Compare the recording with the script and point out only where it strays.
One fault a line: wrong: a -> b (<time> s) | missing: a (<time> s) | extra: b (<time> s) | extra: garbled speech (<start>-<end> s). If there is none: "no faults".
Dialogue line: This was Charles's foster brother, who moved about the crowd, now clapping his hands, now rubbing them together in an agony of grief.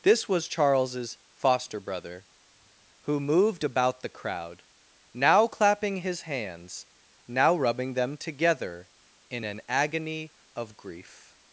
no faults